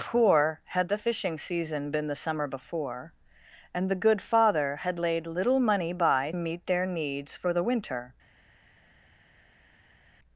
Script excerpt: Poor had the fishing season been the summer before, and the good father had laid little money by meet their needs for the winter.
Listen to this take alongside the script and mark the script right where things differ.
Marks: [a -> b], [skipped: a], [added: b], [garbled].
Poor had the fishing season been the summer before, and the good father had laid little money by meet their needs for the winter.